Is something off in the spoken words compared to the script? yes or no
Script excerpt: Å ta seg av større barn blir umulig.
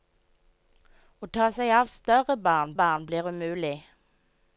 yes